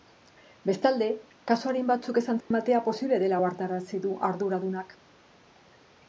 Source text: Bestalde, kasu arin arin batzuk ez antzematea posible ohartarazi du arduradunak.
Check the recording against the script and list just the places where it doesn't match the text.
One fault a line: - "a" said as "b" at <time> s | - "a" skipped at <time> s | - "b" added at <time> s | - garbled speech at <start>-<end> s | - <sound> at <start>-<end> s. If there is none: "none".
- "arin" skipped at 1.9 s
- dropout at 2.4-2.5 s
- "dela" added at 3.2 s